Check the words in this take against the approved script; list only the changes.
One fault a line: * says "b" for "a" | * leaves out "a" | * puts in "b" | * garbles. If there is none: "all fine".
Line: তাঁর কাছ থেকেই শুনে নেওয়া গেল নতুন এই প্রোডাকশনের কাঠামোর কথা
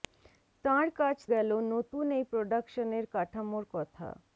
* leaves out "থেকেই শুনে নেওয়া"